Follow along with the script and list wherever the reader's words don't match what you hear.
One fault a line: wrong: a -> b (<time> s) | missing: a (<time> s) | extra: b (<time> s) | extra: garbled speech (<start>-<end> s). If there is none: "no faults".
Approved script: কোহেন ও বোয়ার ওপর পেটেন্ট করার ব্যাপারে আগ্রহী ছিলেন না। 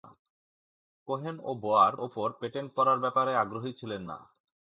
no faults